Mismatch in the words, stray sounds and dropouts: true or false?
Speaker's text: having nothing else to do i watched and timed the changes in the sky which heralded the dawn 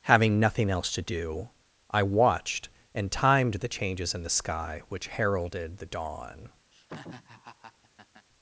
true